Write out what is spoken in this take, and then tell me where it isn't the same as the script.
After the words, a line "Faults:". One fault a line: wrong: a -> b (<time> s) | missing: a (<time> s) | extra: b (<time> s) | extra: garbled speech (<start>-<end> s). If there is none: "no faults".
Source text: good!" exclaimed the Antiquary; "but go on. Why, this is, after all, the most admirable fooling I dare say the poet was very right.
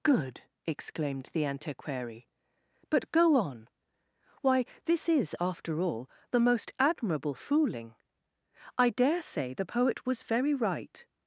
good!" exclaimed the Antiquary; "but go on. Why, this is, after all, the most admirable fooling I dare say the poet was very right.
Faults:
no faults